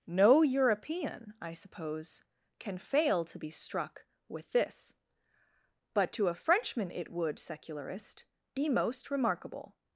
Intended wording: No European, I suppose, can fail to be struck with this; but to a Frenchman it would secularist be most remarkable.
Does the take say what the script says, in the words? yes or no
yes